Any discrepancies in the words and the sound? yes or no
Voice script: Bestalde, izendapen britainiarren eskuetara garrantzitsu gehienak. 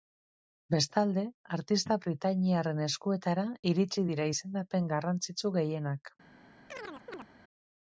yes